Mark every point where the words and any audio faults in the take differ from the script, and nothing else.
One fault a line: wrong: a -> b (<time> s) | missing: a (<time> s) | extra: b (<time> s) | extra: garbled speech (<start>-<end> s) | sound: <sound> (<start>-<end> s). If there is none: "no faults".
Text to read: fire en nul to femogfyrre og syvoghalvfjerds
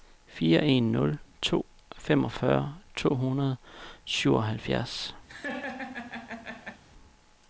extra: to hundrede (3.0 s)
sound: laugh (5.3-6.8 s)